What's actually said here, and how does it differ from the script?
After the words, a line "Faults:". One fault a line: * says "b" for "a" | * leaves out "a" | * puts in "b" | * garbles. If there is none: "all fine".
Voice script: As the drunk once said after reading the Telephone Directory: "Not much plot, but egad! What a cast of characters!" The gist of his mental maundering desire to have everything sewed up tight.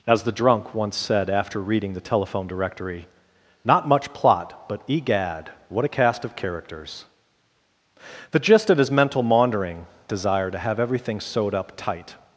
As the drunk once said after reading the Telephone Directory: "Not much plot, but egad! What a cast of characters!" The gist of his mental maundering desire to have everything sewed up tight.
Faults:
all fine